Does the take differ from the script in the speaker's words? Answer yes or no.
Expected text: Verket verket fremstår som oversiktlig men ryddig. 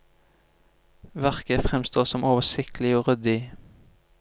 yes